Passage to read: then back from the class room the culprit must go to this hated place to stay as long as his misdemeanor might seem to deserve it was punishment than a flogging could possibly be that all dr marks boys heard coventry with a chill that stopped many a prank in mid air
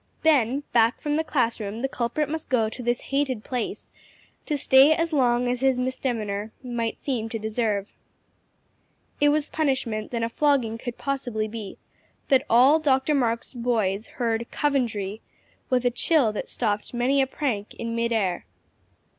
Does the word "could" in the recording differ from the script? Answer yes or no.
no